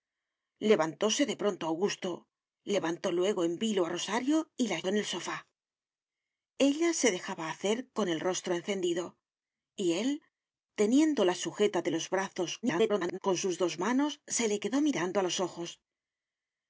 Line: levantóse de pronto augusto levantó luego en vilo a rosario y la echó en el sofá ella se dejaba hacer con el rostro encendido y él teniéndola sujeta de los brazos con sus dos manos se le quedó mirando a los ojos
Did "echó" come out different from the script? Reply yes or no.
yes